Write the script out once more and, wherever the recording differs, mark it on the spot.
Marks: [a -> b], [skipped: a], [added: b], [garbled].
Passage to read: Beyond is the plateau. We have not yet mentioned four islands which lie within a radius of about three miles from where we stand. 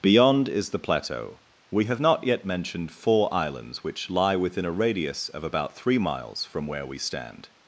Beyond is the plateau. We have not yet mentioned four islands which lie within a radius of about three miles from where we stand.